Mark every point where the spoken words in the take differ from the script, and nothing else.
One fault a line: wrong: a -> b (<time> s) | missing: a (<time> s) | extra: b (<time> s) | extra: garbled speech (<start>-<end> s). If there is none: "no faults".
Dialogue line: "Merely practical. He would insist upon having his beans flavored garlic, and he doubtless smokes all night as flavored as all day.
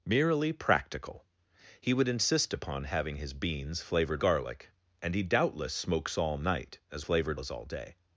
no faults